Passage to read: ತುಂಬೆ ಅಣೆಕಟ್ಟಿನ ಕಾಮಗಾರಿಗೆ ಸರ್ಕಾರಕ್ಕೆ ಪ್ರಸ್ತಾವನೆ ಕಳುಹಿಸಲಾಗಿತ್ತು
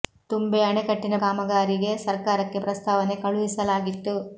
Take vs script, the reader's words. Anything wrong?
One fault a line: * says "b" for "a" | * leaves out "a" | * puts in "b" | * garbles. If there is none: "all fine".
all fine